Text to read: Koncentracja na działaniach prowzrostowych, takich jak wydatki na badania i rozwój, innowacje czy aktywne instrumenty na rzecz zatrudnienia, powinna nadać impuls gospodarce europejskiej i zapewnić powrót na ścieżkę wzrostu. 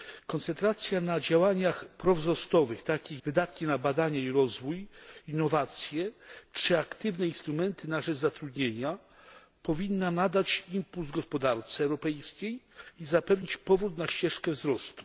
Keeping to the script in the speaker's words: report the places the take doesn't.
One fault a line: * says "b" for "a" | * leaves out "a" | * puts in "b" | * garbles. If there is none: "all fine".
* leaves out "jak"